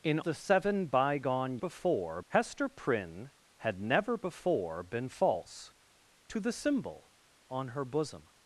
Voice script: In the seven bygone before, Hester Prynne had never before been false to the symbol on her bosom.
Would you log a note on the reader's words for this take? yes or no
no